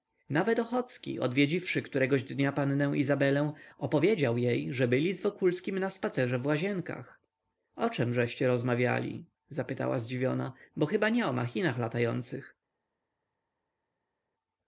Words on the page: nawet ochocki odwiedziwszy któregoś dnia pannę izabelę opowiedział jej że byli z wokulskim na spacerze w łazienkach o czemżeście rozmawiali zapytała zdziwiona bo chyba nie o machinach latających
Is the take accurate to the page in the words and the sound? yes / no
yes